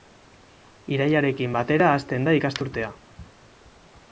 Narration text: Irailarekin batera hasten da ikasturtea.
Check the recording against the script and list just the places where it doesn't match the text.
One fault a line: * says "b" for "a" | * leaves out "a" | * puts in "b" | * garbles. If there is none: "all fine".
all fine